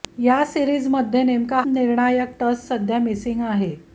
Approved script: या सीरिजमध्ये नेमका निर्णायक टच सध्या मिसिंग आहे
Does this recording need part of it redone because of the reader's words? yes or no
no